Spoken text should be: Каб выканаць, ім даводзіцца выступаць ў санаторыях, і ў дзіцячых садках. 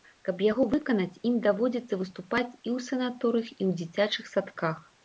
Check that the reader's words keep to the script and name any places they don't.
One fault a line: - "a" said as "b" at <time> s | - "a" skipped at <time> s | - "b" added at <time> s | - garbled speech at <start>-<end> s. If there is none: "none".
- "яго" added at 0.5 s
- "і" added at 2.5 s